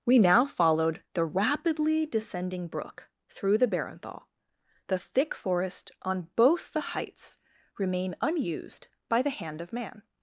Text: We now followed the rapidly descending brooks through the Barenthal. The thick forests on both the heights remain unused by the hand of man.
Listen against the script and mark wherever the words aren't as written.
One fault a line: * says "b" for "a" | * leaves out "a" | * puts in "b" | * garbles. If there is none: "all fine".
* says "brook" for "brooks"
* says "forest" for "forests"